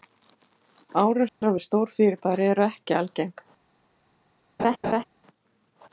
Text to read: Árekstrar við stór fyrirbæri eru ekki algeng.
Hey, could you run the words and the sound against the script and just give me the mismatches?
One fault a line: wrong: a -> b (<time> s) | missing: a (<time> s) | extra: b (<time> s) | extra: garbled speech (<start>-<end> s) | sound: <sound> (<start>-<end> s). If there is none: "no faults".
sound: dropout (1.3-1.4 s)
sound: laugh (4.6-5.0 s)